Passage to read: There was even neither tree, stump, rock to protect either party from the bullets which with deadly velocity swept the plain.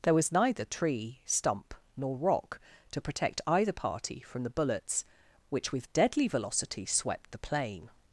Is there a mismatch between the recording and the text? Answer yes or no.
yes